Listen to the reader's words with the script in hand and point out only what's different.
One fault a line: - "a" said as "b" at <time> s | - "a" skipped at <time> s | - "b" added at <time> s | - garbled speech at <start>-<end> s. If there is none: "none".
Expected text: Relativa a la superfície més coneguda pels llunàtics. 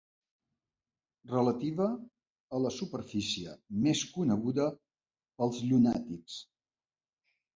none